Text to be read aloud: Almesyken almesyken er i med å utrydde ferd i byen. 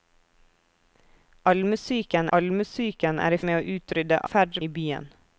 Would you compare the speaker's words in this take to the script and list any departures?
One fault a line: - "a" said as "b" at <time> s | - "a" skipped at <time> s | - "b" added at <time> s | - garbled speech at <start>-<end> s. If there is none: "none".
none